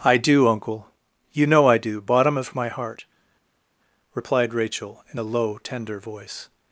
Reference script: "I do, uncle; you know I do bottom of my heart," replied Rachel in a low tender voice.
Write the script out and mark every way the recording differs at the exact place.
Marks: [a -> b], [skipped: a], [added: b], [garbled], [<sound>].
"I do, uncle; you know I do bottom of my heart," replied Rachel in a low tender voice.